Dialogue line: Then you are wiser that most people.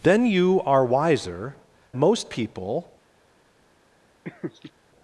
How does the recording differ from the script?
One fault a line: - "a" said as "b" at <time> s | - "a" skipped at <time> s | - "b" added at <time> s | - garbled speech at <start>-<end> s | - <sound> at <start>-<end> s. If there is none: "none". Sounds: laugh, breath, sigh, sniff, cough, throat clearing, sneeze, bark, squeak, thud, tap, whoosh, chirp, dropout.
- "that" skipped at 1.6 s
- laugh at 4.2-4.7 s